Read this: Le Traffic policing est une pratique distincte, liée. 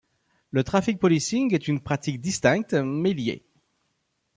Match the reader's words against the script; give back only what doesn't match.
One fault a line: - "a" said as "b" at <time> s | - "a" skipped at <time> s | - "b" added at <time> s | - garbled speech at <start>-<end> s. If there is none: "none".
- "mais" added at 2.7 s